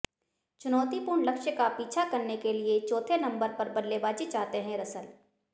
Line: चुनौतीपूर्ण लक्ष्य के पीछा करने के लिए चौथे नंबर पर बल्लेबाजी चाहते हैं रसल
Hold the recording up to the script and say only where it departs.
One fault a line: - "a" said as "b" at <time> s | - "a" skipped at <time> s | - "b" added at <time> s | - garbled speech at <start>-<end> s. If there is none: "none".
- "के" said as "का" at 1.5 s